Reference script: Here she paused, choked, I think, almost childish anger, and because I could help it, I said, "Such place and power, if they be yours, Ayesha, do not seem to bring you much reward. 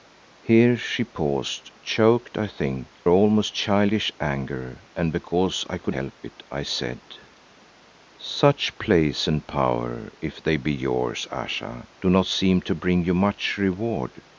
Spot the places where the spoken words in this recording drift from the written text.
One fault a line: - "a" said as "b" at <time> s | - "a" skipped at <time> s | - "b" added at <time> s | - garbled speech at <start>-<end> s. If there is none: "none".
none